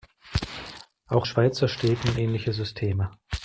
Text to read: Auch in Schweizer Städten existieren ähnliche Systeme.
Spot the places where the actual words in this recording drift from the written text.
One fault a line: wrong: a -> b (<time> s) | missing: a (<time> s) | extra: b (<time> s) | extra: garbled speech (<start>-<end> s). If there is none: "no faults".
missing: in (1.3 s)
missing: existieren (2.2 s)